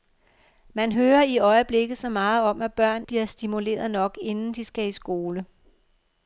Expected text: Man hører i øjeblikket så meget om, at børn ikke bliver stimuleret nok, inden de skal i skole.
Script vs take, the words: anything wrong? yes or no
yes